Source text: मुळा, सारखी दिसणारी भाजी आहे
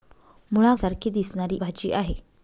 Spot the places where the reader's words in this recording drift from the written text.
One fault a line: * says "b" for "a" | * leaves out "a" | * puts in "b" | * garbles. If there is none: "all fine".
all fine